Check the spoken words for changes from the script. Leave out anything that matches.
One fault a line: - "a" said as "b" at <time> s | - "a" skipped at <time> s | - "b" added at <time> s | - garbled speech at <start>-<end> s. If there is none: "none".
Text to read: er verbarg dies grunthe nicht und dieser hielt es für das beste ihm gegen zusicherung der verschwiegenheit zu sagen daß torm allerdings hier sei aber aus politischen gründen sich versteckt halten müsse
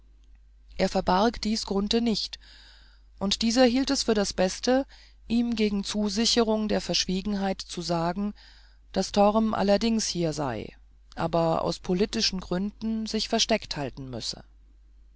none